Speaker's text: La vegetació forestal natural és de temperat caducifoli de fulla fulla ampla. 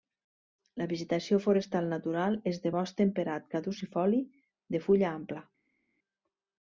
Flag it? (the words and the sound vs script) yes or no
yes